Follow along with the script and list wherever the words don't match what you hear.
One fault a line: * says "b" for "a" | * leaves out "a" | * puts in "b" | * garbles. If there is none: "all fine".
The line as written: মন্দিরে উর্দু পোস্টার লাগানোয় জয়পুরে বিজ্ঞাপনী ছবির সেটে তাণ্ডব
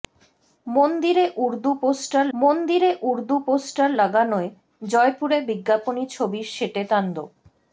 * puts in "মন্দিরে উর্দু পোস্টার"